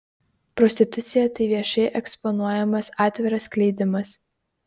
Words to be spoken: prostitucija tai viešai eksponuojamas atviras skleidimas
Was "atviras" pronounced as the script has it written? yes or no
yes